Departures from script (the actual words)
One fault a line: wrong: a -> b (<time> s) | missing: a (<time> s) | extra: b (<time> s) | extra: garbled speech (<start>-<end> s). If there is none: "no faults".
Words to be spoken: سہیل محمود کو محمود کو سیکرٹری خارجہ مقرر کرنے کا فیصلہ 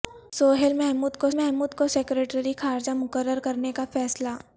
no faults